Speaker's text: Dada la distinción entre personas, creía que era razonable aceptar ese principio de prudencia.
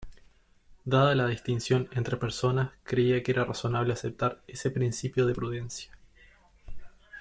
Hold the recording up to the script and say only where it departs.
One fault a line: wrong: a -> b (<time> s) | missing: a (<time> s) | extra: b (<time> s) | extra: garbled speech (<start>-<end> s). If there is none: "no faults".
no faults